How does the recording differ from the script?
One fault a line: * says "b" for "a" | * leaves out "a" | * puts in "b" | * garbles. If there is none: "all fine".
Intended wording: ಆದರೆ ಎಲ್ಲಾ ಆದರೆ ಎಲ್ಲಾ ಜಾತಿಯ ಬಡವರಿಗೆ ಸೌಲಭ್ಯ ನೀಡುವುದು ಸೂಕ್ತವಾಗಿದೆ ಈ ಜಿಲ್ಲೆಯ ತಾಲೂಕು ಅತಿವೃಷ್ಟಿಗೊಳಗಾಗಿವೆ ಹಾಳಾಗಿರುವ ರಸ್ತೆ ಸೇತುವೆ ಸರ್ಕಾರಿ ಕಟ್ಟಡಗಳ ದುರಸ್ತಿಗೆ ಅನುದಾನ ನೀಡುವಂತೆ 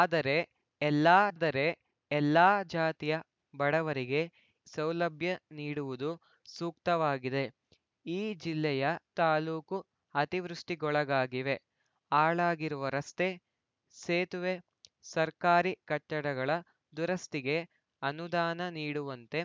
all fine